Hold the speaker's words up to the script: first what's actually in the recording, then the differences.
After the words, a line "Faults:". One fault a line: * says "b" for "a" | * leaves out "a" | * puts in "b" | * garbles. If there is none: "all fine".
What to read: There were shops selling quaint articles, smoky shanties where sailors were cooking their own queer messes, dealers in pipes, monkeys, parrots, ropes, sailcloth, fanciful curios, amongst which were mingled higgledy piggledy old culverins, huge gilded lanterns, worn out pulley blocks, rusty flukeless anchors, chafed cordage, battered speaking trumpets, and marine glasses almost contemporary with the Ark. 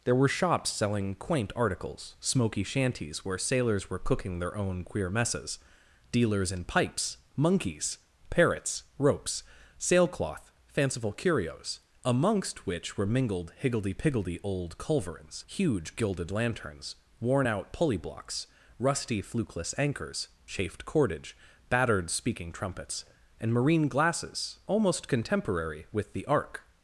There were shops selling quaint articles, smoky shanties where sailors were cooking their own queer messes, dealers in pipes, monkeys, parrots, ropes, sailcloth, fanciful curios, amongst which were mingled higgledy piggledy old culverins, huge gilded lanterns, worn out pulley blocks, rusty flukeless anchors, chafed cordage, battered speaking trumpets, and marine glasses almost contemporary with the Ark.
Faults:
all fine